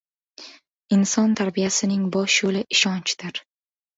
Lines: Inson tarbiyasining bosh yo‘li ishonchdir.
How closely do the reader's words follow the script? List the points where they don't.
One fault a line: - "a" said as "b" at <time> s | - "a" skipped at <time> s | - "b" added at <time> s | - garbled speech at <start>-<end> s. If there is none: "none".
none